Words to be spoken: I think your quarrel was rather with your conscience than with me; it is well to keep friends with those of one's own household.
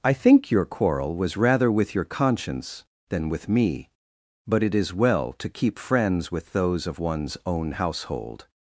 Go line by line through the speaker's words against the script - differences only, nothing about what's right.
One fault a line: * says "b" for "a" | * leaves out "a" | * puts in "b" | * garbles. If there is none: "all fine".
* puts in "but"